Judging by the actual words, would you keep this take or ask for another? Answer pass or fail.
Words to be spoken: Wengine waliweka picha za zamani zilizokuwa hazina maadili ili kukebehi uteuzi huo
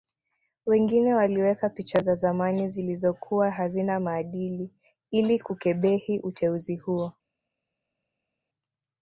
pass